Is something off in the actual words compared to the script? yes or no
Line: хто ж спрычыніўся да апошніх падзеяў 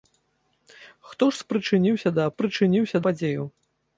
yes